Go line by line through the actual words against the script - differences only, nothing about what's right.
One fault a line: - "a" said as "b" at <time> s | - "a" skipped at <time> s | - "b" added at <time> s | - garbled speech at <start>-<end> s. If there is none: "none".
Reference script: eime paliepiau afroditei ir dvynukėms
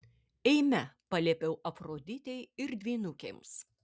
none